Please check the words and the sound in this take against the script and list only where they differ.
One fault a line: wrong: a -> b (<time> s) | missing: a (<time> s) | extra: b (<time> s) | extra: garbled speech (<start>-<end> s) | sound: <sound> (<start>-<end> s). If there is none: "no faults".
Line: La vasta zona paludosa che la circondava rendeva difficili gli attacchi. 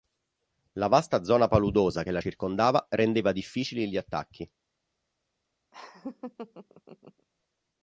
sound: laugh (5.7-7.3 s)